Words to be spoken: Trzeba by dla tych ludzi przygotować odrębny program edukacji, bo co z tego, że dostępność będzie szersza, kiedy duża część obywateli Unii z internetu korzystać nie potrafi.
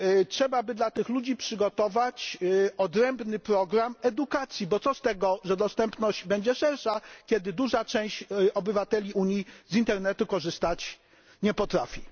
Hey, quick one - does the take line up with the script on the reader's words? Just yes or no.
yes